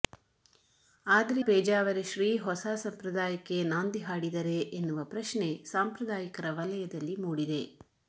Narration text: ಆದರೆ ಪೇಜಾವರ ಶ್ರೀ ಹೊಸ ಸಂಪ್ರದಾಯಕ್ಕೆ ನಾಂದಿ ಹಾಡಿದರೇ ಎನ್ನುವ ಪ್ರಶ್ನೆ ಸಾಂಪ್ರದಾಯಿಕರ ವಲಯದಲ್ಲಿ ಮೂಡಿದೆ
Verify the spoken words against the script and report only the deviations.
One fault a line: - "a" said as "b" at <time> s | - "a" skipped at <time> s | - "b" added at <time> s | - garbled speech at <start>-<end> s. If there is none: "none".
none